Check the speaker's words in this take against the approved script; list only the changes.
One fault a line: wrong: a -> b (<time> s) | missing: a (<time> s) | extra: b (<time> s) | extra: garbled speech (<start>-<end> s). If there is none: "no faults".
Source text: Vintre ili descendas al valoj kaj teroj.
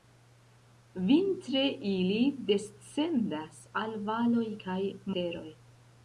no faults